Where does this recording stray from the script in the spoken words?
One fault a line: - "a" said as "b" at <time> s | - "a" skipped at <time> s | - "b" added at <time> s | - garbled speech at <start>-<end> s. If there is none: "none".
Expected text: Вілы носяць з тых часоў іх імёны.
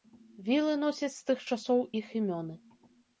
none